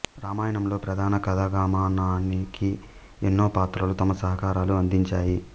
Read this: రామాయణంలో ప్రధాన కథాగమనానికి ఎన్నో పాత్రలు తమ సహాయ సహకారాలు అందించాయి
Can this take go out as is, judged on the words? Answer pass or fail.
fail